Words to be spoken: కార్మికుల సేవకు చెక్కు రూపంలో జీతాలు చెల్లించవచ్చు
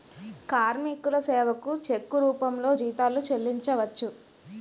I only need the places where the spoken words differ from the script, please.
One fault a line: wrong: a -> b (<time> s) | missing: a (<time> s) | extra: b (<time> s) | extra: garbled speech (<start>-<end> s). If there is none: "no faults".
no faults